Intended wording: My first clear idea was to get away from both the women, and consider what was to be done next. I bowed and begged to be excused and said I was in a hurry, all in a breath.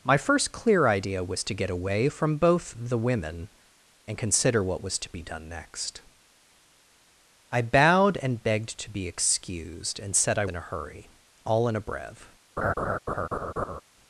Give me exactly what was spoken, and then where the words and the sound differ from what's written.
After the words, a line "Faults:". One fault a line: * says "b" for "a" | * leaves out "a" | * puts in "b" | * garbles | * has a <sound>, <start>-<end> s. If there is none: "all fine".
My first clear idea was to get away from both the women, and consider what was to be done next. I bowed and begged to be excused and said I in a hurry, all in a breath.
Faults:
* leaves out "was"
* has a laugh, 12.6-13.8 s